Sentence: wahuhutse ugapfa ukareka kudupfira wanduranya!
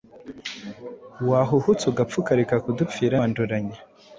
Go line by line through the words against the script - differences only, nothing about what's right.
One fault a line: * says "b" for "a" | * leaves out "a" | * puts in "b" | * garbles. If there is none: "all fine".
all fine